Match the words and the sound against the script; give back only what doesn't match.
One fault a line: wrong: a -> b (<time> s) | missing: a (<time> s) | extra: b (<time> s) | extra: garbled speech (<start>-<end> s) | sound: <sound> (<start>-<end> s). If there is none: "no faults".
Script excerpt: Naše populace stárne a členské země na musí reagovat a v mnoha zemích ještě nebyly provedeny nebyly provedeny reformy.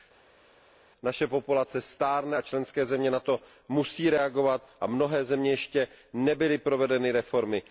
extra: to (3.2 s)
missing: nebyly provedeny (7.1 s)